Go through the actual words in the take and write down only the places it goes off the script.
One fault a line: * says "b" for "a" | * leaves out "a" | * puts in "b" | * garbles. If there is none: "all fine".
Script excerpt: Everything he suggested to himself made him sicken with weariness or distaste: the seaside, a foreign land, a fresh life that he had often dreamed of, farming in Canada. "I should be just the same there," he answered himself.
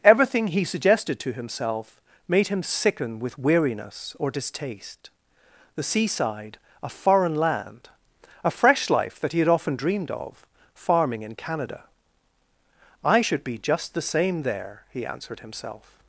all fine